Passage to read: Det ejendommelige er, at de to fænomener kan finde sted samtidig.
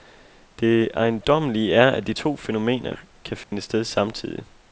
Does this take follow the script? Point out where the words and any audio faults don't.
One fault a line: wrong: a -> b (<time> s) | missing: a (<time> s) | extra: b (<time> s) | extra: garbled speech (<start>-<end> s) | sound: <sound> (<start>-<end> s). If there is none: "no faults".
sound: dropout (3.4-3.5 s)